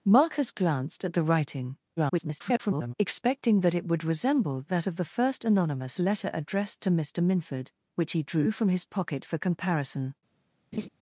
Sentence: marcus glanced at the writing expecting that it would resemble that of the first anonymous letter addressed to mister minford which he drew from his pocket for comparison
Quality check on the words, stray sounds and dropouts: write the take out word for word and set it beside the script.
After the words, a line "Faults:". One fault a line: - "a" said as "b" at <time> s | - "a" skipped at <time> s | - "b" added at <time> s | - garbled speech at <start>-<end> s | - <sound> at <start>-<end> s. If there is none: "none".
marcus glanced at the writing [garbled] expecting that it would resemble that of the first anonymous letter addressed to mister minford which he drew from his pocket for comparison
Faults:
- garbled speech at 2.0-2.9 s
- laugh at 10.7-10.9 s